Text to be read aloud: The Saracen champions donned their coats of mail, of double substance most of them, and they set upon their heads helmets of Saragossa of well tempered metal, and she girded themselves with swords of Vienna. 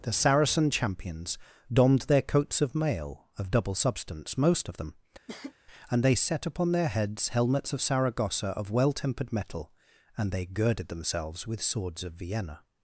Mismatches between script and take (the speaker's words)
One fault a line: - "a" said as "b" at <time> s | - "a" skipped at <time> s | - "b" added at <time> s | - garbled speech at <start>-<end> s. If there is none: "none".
- "she" said as "they" at 10.3 s